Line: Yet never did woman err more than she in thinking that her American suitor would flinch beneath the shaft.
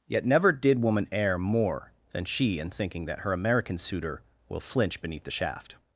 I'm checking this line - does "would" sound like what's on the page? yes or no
no